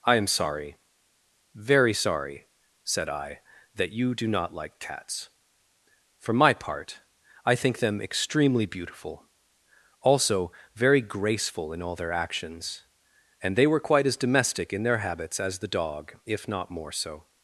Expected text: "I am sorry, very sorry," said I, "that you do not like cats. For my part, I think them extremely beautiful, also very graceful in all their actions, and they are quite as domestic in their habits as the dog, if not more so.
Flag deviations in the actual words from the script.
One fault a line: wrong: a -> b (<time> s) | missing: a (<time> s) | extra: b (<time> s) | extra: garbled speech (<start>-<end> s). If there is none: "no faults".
wrong: are -> were (13.7 s)